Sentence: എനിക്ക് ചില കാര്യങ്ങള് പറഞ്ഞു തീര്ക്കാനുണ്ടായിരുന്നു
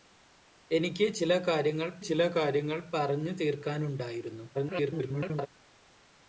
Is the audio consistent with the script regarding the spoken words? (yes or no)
no